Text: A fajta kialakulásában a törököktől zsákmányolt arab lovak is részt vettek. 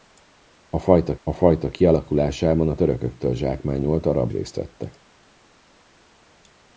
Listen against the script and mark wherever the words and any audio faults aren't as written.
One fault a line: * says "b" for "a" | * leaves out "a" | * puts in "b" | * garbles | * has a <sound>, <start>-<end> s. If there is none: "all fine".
* puts in "a fajta"
* leaves out "lovak is"